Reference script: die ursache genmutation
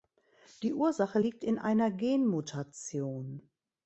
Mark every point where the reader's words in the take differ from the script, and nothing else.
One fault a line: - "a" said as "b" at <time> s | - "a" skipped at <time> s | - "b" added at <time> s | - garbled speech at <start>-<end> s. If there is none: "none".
- "liegt in einer" added at 1.2 s